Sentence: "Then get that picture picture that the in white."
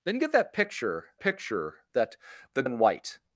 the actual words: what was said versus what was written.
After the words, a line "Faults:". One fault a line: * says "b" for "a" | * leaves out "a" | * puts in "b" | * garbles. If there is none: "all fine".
"Then get that picture picture that the in white."
Faults:
all fine